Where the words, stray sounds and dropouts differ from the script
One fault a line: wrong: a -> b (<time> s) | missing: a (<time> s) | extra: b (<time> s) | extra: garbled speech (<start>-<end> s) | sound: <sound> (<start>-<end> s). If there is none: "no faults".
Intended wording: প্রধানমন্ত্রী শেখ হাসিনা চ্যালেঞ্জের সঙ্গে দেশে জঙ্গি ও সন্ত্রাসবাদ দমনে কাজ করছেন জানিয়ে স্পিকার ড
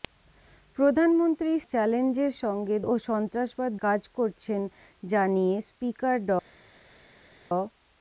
missing: শেখ হাসিনা (1.5 s)
missing: দেশে জঙ্গি (2.7 s)
missing: দমনে (3.7 s)